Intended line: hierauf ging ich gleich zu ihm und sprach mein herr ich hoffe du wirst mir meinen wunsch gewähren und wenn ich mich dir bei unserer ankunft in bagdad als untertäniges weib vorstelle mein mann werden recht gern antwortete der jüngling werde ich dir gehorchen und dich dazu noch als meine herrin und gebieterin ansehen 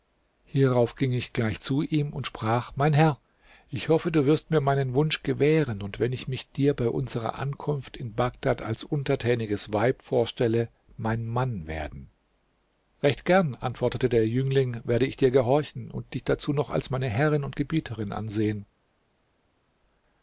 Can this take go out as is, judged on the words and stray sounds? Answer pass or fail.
pass